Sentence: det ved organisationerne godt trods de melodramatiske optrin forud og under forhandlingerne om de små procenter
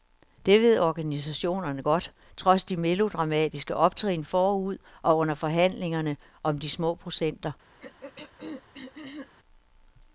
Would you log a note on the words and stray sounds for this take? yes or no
yes